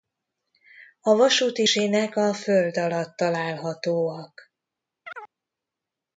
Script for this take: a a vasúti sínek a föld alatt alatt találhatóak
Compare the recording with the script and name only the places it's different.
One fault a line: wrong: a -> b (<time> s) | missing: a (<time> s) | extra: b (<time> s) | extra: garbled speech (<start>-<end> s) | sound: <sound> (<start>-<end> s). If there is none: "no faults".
missing: a (1.1 s)
missing: alatt (3.2 s)
sound: chirp (5.0-5.3 s)